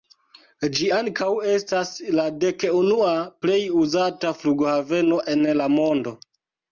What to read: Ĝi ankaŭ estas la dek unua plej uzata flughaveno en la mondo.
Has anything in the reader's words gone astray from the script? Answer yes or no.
no